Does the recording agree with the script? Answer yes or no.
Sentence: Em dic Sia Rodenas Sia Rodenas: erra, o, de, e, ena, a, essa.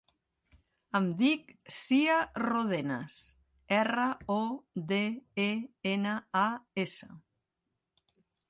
no